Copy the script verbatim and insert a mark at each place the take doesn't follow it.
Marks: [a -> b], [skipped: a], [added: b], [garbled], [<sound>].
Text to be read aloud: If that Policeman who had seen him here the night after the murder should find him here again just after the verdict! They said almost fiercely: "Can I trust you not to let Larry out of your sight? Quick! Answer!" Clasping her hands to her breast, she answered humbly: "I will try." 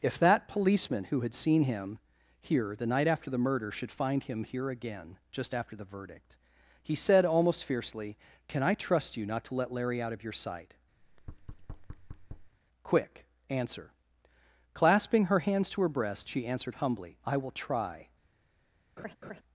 If that Policeman who had seen him here the night after the murder should find him here again just after the verdict! [They -> He] said almost fiercely: "Can I trust you not to let Larry out of your sight? [thud] Quick! Answer!" Clasping her hands to her breast, she answered humbly: "I will try." [laugh]